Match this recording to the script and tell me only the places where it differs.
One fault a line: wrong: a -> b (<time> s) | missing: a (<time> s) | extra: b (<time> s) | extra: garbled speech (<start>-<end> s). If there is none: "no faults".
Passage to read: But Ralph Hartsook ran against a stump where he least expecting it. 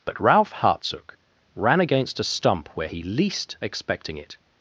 no faults